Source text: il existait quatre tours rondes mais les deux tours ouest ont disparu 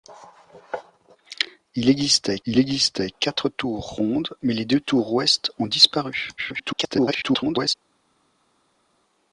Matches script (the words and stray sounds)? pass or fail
fail